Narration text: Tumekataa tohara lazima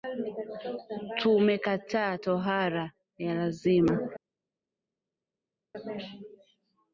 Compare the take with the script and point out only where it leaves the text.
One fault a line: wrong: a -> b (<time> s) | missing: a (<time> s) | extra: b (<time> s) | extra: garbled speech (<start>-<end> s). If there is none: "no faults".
extra: ya (3.2 s)